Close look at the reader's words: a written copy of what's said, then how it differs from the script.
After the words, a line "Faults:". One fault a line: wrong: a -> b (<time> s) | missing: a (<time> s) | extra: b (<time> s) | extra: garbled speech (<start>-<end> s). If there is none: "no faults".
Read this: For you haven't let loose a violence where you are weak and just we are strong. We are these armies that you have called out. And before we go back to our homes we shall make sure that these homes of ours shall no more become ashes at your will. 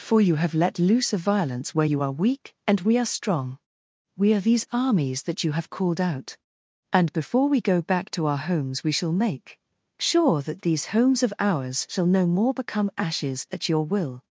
For you have let loose a violence where you are weak and we are strong. We are these armies that you have called out. And before we go back to our homes we shall make sure that these homes of ours shall no more become ashes at your will.
Faults:
wrong: haven't -> have (0.3 s)
missing: just (2.8 s)